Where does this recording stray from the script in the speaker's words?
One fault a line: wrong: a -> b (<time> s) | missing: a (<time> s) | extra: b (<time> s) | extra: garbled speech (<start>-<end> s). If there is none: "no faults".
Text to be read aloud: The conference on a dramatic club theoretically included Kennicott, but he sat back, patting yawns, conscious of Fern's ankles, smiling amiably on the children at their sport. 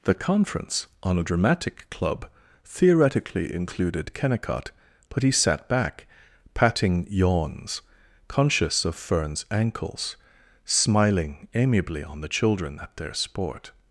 no faults